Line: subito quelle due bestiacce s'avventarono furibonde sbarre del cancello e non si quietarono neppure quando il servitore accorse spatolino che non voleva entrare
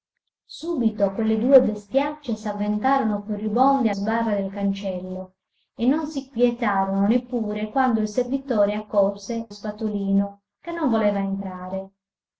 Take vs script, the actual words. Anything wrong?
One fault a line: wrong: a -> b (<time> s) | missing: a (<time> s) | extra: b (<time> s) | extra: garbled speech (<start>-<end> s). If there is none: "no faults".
no faults